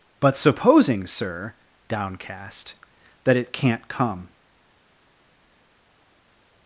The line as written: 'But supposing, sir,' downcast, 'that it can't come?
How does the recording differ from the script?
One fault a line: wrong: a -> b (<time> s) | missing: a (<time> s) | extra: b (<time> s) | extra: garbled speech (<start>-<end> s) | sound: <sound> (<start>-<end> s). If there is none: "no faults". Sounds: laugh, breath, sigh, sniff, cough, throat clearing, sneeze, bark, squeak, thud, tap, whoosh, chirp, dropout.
no faults